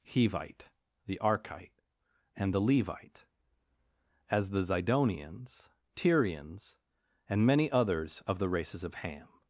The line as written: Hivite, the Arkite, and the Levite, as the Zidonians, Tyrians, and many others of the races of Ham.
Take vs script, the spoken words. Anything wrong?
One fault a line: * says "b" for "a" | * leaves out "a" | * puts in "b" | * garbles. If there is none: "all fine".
all fine